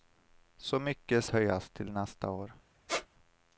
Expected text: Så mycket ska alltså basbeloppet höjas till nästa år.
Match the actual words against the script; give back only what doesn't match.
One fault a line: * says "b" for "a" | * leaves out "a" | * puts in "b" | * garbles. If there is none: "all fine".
* leaves out "ska alltså basbeloppet"